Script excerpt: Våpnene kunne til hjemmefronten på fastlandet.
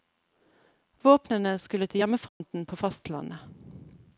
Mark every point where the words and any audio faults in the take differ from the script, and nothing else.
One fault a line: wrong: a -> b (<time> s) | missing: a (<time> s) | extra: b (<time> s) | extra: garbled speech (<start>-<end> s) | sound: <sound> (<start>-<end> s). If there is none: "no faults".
wrong: kunne -> skulle (1.6 s)
sound: dropout (2.3-2.4 s)